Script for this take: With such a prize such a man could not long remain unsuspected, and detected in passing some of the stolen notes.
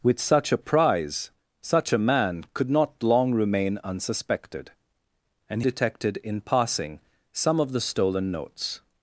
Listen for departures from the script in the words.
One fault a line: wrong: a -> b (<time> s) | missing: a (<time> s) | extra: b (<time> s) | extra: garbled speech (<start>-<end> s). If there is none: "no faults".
no faults